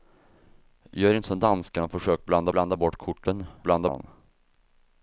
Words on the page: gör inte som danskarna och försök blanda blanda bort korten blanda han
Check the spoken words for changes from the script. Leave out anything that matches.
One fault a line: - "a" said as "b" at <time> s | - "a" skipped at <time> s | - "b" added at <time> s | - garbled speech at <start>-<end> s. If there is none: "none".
none